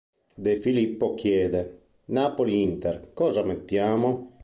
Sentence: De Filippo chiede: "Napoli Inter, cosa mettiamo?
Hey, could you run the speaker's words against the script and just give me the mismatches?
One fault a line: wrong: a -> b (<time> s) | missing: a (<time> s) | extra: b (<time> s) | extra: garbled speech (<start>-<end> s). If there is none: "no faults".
no faults